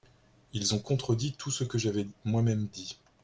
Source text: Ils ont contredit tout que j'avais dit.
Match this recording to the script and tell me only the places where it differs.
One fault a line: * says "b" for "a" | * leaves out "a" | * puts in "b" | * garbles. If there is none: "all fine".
* puts in "ce"
* puts in "moi même"